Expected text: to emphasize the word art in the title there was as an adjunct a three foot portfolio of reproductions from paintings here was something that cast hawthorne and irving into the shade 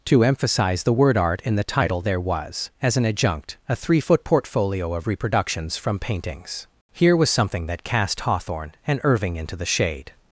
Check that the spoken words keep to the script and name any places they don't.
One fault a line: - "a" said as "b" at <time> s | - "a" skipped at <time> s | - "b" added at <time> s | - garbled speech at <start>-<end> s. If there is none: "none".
none